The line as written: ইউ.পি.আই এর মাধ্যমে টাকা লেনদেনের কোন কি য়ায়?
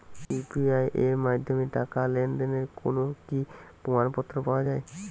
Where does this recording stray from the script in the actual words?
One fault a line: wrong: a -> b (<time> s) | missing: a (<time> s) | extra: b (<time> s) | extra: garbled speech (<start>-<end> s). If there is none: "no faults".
extra: প্রমাণপত্র পাওয়া (3.8 s)